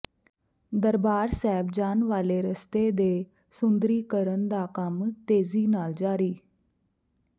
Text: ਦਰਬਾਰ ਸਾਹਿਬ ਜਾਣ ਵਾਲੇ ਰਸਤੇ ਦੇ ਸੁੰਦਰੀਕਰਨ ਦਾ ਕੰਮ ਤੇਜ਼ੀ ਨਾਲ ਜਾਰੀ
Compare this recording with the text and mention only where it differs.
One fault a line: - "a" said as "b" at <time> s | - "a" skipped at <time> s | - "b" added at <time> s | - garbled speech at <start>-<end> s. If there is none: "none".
none